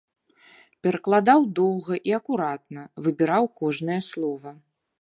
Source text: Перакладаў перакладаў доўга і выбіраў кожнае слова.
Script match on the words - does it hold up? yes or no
no